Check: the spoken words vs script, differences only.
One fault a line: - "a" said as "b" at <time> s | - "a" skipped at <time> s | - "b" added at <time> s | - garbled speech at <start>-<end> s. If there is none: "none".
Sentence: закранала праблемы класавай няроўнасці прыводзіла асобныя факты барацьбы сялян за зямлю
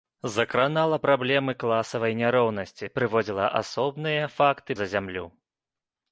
- "барацьбы сялян" skipped at 4.7 s